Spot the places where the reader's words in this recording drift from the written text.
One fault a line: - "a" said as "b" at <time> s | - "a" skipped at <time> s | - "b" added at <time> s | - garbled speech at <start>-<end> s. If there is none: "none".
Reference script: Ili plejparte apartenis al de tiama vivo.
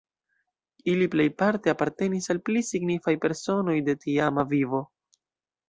- "pli signifaj personoj" added at 2.5 s